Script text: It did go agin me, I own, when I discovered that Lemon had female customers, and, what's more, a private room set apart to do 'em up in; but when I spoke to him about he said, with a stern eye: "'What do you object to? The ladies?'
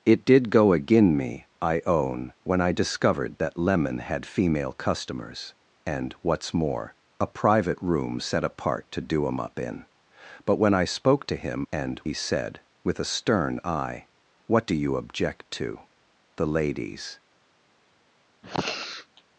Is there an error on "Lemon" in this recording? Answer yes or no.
no